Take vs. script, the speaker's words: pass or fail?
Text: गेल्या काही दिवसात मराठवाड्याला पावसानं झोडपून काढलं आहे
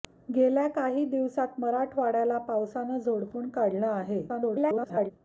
fail